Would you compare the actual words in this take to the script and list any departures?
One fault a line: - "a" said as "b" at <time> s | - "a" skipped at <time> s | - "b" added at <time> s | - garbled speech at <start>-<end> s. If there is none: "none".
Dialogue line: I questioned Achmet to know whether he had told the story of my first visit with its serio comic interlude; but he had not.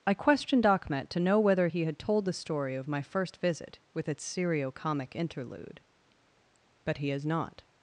- "had" said as "has" at 7.1 s